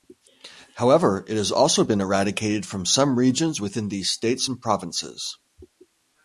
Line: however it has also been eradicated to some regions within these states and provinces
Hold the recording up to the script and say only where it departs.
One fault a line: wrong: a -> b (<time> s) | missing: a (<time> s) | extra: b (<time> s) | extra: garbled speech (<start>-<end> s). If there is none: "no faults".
wrong: to -> from (2.6 s)